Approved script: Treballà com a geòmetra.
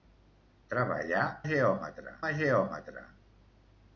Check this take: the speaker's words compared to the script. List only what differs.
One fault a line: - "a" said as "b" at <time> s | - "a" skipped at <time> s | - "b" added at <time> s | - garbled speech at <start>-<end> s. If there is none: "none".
- "com" said as "geòmetra" at 1.5 s